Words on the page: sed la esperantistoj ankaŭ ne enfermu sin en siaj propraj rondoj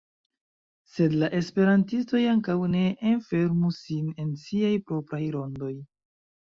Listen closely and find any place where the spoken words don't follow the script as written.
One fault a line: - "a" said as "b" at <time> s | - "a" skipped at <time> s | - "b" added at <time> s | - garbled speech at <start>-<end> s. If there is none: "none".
none